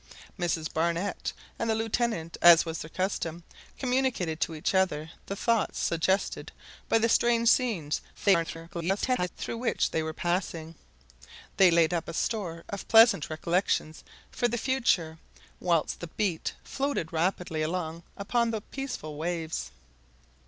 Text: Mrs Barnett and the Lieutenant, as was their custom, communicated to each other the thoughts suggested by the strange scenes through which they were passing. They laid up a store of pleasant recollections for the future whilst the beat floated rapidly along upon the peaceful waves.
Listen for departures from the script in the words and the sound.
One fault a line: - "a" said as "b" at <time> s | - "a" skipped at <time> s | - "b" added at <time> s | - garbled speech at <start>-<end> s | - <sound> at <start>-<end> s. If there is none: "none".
- garbled speech at 8.1-9.3 s